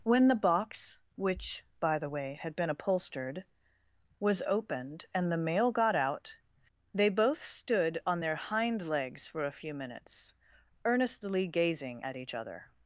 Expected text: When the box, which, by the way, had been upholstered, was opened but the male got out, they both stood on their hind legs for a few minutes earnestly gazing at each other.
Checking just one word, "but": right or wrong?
wrong